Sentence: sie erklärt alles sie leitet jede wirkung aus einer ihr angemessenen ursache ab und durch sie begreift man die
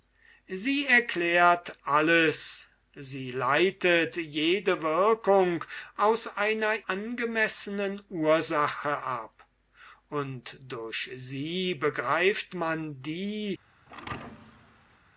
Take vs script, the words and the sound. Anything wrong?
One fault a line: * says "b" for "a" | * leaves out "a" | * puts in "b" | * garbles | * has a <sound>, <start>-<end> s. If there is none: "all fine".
* leaves out "ihr"
* has a thud, 13.9-15.0 s